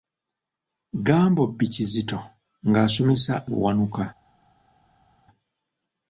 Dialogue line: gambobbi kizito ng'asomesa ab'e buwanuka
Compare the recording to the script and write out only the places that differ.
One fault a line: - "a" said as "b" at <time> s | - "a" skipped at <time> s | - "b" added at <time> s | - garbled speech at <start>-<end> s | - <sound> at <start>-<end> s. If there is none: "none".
- "ab'e" skipped at 3.3 s